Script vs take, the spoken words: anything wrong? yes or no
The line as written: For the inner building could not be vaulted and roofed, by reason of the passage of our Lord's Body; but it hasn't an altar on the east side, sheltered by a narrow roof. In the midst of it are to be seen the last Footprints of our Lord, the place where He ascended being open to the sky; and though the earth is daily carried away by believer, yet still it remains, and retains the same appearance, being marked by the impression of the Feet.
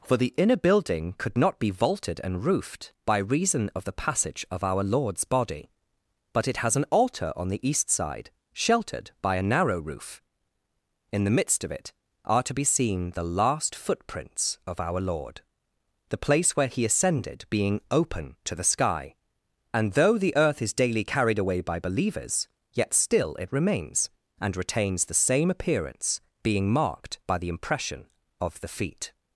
yes